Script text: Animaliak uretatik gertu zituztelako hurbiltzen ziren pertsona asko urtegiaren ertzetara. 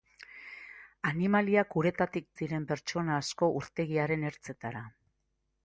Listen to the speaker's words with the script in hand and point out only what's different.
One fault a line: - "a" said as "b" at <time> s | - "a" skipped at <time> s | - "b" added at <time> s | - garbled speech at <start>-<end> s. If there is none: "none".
- "gertu zituztelako hurbiltzen" skipped at 2.2 s